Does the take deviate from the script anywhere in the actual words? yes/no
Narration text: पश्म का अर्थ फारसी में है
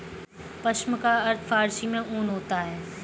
yes